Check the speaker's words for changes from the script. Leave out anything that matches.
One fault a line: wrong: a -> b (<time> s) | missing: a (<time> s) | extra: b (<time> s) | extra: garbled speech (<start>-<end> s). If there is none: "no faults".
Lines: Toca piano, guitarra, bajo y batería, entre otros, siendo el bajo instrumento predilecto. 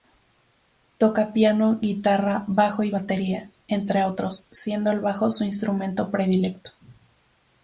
extra: su (5.3 s)